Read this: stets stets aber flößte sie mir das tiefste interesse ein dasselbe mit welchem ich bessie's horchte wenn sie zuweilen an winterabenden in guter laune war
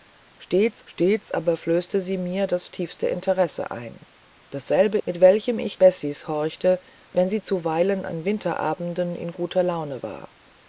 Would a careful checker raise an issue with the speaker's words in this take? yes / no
no